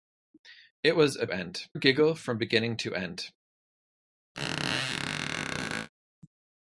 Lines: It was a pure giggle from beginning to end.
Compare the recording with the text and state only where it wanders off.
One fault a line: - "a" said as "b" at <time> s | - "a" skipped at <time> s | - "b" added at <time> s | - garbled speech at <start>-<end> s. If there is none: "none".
- "pure" said as "end" at 1.3 s